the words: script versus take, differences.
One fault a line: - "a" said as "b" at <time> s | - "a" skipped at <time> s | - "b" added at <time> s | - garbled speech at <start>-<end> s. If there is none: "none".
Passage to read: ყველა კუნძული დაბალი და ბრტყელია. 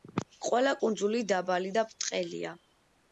none